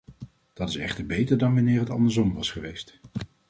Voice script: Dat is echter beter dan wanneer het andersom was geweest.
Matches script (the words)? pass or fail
pass